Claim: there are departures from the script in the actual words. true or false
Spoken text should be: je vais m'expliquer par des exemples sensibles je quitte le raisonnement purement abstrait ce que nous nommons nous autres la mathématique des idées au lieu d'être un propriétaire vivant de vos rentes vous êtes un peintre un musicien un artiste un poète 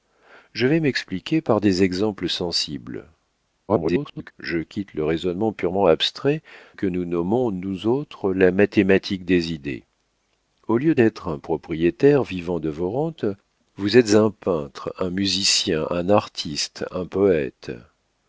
true